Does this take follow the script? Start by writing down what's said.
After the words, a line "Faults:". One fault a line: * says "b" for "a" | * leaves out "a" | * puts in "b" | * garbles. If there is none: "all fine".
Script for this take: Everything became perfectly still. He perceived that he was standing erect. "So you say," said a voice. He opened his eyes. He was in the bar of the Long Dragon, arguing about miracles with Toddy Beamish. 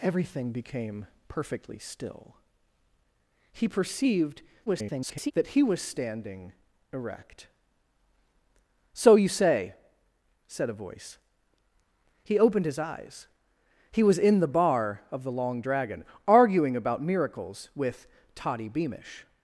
Everything became perfectly still. He perceived [garbled] that he was standing erect. "So you say," said a voice. He opened his eyes. He was in the bar of the Long Dragon, arguing about miracles with Toddy Beamish.
Faults:
* garbles